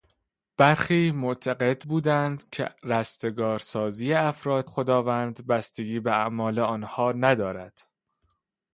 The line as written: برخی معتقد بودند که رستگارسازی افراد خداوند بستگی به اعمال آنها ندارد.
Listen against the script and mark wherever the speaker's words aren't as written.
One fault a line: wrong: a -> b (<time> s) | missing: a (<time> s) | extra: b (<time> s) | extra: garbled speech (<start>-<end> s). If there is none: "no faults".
no faults